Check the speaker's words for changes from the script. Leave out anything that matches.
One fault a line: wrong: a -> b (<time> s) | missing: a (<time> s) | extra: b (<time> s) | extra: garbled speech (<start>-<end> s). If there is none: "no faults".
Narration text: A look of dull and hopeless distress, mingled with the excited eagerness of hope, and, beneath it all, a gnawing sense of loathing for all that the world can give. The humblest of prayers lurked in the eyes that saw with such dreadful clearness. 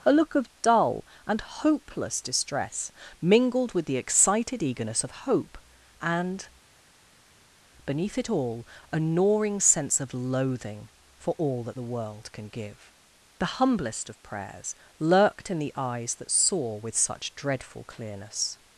no faults